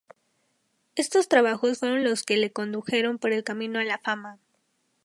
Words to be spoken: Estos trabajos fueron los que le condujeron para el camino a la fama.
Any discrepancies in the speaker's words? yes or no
yes